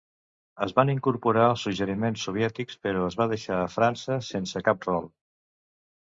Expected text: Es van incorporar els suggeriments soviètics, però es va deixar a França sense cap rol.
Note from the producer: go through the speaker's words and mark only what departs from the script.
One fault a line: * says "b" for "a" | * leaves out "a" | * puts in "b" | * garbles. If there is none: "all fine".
all fine